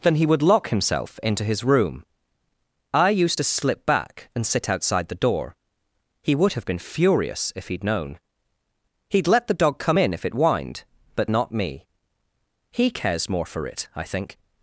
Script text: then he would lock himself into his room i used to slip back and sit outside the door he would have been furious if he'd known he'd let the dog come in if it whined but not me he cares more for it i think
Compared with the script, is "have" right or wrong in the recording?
right